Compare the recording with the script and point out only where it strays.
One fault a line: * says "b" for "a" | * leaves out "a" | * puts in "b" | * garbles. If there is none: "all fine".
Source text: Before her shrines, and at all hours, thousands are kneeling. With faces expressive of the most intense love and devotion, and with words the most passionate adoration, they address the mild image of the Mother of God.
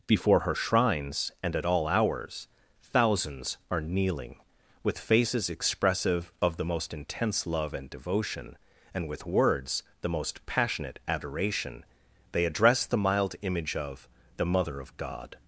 all fine